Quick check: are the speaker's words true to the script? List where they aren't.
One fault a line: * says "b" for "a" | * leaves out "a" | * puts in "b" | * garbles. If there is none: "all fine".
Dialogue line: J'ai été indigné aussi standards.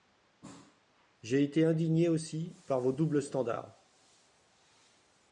* puts in "par vos doubles"